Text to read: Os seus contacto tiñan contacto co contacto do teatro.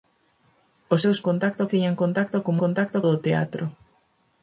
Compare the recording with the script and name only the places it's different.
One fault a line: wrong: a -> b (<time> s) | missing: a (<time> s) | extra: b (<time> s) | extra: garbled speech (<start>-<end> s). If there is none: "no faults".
no faults